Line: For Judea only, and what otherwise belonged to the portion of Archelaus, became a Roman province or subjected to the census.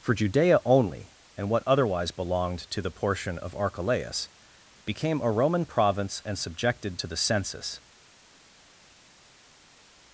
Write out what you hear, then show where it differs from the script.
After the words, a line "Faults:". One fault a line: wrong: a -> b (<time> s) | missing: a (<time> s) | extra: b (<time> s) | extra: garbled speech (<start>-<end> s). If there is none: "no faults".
For Judea only, and what otherwise belonged to the portion of Archelaus, became a Roman province and subjected to the census.
Faults:
wrong: or -> and (6.2 s)